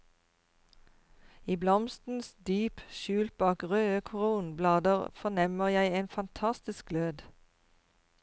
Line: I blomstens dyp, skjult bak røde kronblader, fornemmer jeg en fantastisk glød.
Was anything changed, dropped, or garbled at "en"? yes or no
no